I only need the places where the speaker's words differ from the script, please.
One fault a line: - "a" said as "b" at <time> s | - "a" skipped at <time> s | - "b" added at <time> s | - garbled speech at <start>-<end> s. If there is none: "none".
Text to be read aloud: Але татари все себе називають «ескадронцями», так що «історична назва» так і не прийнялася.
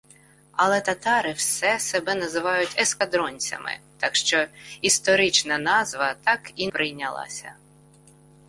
- "не" skipped at 6.7 s